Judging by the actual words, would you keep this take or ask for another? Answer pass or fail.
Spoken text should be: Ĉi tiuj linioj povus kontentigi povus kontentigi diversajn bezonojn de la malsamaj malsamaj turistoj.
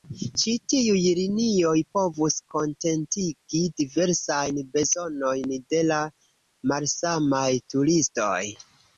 fail